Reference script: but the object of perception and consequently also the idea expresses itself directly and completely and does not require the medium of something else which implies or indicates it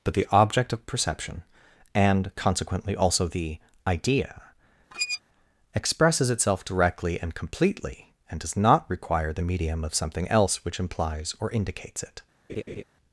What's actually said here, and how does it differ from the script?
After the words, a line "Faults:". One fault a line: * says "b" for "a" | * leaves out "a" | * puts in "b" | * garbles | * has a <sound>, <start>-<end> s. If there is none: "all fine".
but the object of perception and consequently also the idea expresses itself directly and completely and does not require the medium of something else which implies or indicates it
Faults:
* has a squeak, 4.9-5.2 s
* has a laugh, 12.5-12.8 s